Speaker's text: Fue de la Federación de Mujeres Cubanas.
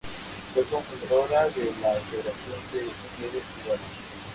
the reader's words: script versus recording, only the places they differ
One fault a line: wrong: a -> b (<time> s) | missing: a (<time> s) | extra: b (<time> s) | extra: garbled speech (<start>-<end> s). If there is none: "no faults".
extra: cofundadora (0.7 s)